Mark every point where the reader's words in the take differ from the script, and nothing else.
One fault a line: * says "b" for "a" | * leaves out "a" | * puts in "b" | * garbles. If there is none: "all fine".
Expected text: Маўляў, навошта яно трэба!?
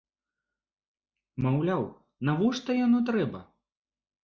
all fine